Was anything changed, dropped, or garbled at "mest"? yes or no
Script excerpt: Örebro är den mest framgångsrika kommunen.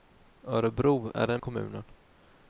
yes